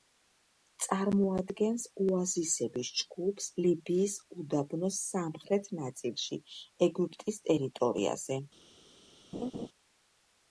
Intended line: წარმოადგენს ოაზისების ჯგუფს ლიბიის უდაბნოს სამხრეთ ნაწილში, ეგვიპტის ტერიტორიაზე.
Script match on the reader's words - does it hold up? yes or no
yes